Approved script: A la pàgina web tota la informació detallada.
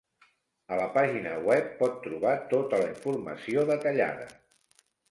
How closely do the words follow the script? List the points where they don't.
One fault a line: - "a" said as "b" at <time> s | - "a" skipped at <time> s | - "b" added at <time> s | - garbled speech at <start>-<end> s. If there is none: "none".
- "pot trobar" added at 1.8 s